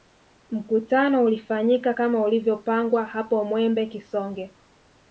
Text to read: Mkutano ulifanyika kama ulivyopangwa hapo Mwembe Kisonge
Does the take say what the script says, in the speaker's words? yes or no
yes